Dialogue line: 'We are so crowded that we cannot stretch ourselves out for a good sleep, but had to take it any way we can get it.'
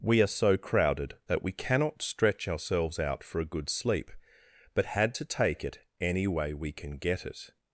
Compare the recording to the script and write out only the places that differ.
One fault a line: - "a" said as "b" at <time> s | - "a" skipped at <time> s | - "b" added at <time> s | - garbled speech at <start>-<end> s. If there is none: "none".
none